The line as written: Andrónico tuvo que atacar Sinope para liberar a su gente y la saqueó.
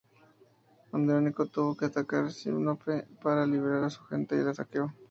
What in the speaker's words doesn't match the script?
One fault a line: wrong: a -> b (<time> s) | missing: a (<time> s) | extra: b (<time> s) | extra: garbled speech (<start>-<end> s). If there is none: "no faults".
no faults